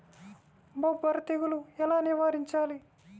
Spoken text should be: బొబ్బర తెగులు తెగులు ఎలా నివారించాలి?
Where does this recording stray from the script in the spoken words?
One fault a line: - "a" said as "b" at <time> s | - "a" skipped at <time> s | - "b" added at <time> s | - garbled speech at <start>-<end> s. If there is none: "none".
- "తెగులు" skipped at 1.6 s